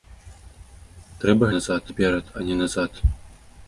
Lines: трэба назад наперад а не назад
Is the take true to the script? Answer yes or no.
yes